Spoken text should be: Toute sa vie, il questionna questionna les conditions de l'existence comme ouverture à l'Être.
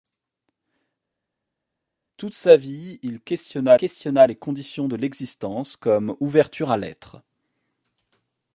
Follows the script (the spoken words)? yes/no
yes